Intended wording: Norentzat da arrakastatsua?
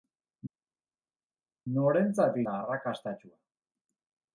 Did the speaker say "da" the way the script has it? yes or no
yes